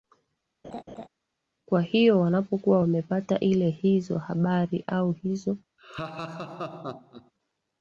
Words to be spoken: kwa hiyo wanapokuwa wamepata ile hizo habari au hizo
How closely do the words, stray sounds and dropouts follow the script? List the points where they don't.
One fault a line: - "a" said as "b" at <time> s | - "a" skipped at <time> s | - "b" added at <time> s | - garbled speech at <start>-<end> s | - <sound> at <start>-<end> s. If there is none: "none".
- laugh at 0.6-1.1 s
- laugh at 5.8-7.3 s